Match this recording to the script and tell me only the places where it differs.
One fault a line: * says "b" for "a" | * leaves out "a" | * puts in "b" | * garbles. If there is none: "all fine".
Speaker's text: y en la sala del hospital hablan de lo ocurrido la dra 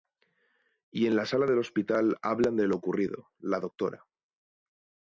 all fine